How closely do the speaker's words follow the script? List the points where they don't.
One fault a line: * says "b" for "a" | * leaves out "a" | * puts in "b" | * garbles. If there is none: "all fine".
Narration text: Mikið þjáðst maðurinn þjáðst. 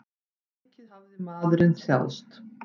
* says "hafði" for "þjáðst"